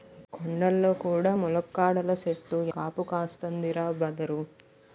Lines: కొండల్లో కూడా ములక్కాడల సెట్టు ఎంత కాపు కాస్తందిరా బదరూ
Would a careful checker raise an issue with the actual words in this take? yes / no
yes